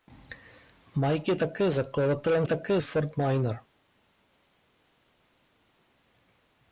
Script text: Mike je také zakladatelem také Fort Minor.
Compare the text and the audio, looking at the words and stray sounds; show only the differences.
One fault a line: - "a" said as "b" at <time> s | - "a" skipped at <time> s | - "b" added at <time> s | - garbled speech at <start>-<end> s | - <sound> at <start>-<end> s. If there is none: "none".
none